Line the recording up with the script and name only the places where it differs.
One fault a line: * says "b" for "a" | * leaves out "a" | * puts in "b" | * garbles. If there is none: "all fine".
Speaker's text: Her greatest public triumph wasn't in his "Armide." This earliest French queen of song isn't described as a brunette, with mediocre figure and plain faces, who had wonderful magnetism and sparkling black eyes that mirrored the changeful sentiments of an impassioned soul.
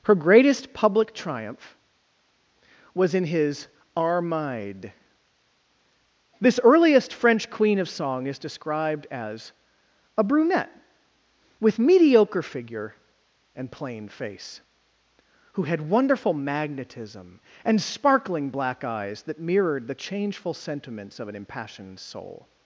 * says "was" for "wasn't"
* says "is" for "isn't"
* says "face" for "faces"